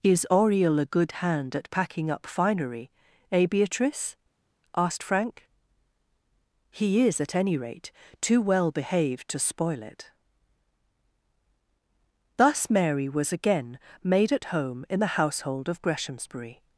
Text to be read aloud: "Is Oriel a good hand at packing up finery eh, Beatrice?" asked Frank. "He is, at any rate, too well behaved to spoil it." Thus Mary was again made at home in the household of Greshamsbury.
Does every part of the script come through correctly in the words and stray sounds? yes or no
yes